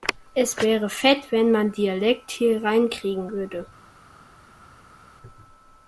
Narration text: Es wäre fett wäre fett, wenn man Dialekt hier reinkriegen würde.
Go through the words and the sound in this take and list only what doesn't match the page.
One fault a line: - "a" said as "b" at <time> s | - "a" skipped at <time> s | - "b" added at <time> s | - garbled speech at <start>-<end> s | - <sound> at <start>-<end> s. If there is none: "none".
- "wäre fett" skipped at 1.3 s